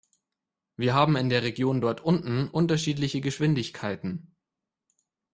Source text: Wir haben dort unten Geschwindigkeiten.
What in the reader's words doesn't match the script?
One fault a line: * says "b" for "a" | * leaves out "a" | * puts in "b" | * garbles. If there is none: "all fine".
* puts in "in der Region"
* puts in "unterschiedliche"